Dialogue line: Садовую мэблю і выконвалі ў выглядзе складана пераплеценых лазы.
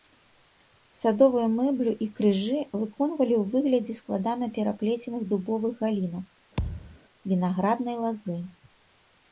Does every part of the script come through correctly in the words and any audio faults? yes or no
no